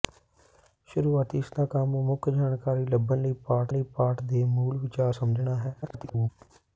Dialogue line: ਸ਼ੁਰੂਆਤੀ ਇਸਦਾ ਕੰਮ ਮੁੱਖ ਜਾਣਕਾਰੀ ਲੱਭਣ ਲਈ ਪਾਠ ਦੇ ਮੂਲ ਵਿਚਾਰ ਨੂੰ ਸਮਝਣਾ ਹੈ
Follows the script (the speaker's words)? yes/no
no